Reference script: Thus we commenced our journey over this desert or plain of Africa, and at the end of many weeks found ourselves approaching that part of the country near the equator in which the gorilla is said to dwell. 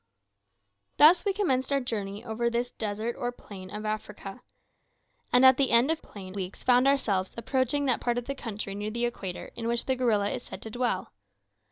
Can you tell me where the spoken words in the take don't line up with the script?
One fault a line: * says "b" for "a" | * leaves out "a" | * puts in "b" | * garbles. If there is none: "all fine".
* says "plain" for "many"